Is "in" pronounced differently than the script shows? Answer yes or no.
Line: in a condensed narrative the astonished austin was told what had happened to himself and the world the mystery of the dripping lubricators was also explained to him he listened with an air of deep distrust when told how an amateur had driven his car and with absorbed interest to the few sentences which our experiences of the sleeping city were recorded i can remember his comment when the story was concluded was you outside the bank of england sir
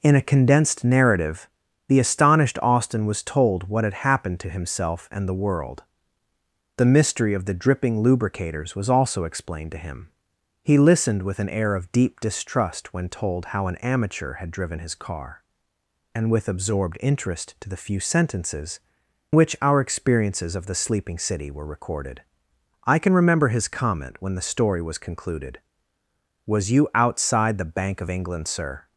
no